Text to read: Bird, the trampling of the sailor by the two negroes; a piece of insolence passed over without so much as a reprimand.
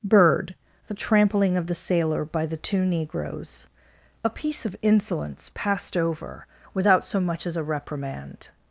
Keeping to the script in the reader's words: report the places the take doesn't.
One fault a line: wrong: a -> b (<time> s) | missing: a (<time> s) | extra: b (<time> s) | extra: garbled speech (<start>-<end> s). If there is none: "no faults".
no faults